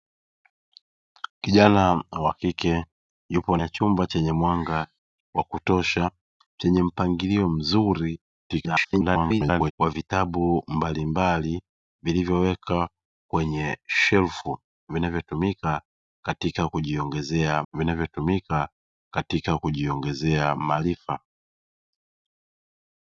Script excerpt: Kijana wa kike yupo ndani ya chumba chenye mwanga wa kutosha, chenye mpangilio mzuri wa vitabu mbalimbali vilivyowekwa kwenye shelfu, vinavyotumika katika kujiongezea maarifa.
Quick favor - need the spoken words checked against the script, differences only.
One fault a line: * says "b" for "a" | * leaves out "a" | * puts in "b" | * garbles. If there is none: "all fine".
* leaves out "ndani"
* garbles
* puts in "vinavyotumika katika kujiongezea"